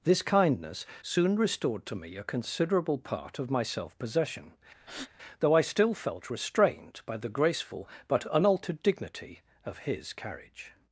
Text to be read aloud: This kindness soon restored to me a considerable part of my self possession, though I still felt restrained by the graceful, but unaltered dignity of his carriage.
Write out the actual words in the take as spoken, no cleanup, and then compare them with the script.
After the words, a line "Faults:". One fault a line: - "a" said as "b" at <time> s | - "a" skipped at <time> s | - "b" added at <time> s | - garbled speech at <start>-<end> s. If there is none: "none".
This kindness soon restored to me a considerable part of my self possession, though I still felt restrained by the graceful, but unaltered dignity of his carriage.
Faults:
none